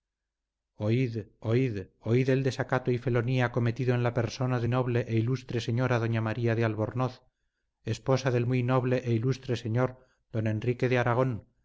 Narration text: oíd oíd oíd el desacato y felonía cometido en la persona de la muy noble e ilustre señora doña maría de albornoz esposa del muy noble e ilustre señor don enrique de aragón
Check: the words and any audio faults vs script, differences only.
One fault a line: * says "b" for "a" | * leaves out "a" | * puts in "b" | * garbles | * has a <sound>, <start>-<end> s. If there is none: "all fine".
* leaves out "la muy"